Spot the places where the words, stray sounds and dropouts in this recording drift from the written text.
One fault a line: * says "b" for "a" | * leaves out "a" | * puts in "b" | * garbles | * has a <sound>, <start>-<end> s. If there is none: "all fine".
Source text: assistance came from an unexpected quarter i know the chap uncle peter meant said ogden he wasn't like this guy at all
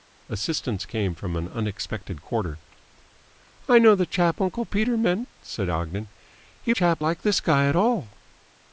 * says "chap" for "wasn't"